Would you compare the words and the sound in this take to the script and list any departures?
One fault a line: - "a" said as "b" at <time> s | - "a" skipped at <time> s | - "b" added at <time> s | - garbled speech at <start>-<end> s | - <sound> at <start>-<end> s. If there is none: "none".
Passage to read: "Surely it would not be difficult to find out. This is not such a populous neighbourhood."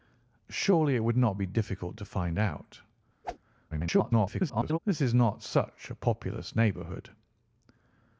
- whoosh at 3.2-3.4 s
- garbled speech at 3.7-4.8 s